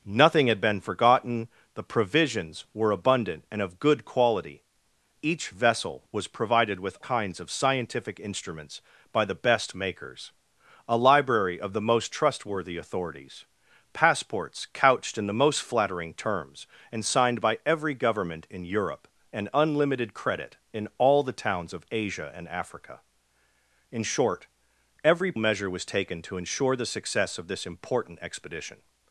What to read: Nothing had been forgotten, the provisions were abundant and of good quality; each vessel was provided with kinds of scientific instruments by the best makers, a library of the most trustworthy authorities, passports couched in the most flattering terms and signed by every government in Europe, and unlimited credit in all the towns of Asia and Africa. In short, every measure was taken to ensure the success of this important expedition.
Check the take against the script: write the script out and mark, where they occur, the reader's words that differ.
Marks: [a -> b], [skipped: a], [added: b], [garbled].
Nothing had been forgotten, the provisions were abundant and of good quality; each vessel was provided with kinds of scientific instruments by the best makers, a library of the most trustworthy authorities, passports couched in the most flattering terms and signed by every government in Europe, and unlimited credit in all the towns of Asia and Africa. In short, every measure was taken to ensure the success of this important expedition.